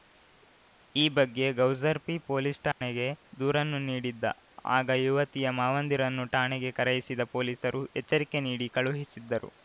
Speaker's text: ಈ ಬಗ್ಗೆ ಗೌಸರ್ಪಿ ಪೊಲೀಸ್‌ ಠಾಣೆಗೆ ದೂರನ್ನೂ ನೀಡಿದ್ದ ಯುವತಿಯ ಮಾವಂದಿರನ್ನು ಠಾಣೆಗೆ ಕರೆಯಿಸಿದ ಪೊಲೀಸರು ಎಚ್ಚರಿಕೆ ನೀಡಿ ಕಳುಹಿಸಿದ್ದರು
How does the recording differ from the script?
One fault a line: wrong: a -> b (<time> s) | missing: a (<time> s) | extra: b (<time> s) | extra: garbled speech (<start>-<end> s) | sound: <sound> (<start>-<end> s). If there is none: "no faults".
sound: dropout (2.7-2.8 s)
extra: ಆಗ (4.8 s)